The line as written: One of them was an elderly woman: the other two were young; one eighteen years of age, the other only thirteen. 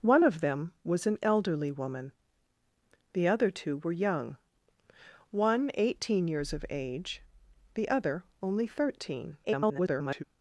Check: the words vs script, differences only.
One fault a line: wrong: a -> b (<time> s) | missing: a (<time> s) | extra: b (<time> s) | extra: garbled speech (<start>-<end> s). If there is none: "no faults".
extra: garbled speech (9.4-10.2 s)